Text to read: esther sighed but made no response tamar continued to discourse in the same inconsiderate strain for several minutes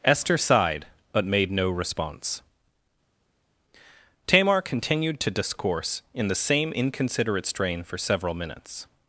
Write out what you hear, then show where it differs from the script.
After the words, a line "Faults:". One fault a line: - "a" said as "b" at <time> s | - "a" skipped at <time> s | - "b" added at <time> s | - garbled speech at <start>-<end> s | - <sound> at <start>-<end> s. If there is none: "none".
esther sighed but made no response tamar continued to discourse in the same inconsiderate strain for several minutes
Faults:
none